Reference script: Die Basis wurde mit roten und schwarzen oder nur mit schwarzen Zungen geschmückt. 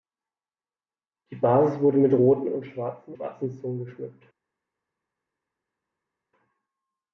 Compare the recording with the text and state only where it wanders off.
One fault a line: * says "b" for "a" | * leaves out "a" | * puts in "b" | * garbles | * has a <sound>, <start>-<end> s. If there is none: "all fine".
* leaves out "oder nur mit"